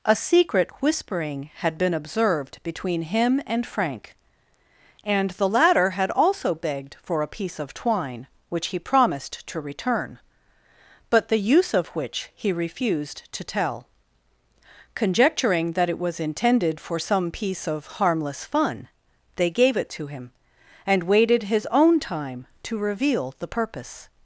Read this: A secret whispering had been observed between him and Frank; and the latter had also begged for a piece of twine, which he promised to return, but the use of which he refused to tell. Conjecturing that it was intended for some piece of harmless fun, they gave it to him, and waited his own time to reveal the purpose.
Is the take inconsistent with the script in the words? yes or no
no